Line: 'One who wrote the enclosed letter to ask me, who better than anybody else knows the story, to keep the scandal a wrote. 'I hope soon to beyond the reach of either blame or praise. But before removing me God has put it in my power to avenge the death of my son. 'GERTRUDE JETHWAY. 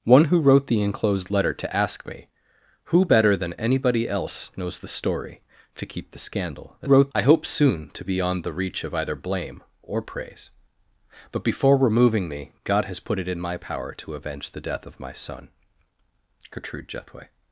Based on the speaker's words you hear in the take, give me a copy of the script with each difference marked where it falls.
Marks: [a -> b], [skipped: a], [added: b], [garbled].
'One who wrote the enclosed letter to ask me, who better than anybody else knows the story, to keep the scandal a wrote. 'I hope soon to beyond the reach of either blame or praise. But before removing me God has put it in my power to avenge the death of my son. 'GERTRUDE JETHWAY.